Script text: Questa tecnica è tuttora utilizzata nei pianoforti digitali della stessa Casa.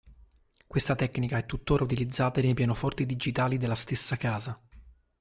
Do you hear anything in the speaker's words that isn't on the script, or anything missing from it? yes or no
no